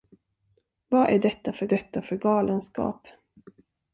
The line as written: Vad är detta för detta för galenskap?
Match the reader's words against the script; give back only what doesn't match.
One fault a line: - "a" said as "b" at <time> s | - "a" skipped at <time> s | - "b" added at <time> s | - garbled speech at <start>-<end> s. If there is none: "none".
none